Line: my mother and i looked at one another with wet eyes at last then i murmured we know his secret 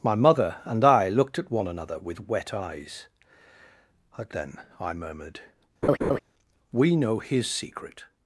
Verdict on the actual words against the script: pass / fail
fail